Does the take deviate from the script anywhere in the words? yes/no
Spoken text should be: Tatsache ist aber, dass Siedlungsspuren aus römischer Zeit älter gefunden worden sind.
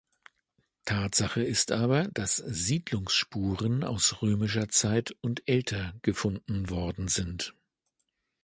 yes